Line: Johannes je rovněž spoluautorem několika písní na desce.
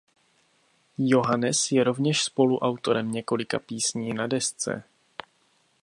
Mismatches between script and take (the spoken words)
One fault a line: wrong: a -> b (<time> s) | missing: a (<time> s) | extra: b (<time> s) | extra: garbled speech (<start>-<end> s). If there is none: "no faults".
no faults